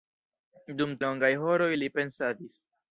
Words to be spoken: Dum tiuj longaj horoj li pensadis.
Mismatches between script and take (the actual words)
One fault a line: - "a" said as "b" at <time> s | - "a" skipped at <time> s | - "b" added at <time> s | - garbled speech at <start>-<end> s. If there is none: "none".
- "tiuj" skipped at 0.9 s